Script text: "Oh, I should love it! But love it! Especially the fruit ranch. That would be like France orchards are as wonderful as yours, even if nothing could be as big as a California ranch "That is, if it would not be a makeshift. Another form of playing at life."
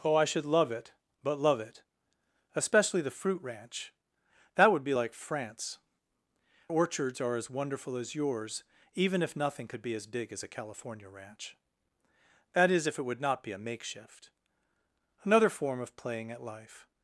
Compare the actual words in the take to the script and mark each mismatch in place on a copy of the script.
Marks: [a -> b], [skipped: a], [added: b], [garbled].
"Oh, I should love it! But love it! Especially the fruit ranch. That would be like France orchards are as wonderful as yours, even if nothing could be as big as a California ranch "That is, if it would not be a makeshift. Another form of playing at life."